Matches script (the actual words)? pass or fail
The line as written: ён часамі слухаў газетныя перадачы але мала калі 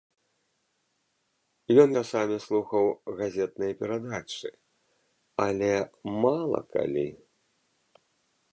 pass